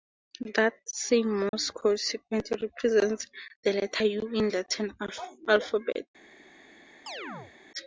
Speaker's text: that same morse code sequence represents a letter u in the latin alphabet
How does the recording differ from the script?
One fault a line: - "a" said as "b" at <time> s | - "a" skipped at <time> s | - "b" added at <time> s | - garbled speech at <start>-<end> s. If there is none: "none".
- "a" said as "the" at 3.6 s